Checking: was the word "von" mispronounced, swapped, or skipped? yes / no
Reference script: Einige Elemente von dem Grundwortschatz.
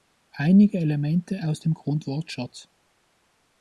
yes